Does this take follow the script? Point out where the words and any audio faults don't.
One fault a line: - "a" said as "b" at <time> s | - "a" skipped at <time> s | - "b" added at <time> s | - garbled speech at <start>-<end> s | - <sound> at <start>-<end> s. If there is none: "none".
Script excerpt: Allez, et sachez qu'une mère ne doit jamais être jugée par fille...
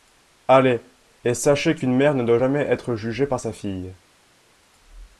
- "sa" added at 3.4 s